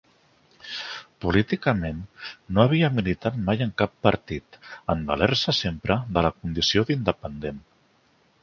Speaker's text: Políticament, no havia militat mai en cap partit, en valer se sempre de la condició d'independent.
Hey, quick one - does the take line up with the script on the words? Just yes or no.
yes